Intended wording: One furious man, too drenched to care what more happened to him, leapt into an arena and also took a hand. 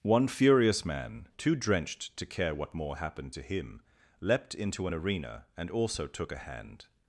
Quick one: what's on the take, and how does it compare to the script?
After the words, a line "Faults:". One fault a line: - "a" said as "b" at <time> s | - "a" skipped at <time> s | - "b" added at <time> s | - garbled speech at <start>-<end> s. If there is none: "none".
One furious man, too drenched to care what more happened to him, leapt into an arena and also took a hand.
Faults:
none